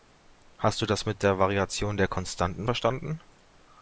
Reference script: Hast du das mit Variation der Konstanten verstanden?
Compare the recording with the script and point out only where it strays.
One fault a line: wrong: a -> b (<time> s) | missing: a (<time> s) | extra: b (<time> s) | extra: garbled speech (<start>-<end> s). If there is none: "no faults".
extra: der (1.2 s)